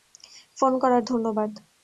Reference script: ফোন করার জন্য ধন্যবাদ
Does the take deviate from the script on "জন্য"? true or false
true